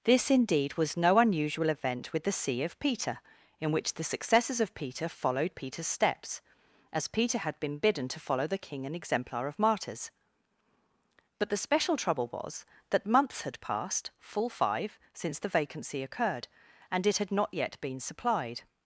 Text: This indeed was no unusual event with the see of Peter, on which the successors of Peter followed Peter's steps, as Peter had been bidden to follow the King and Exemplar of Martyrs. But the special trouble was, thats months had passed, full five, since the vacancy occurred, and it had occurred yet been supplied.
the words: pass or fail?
fail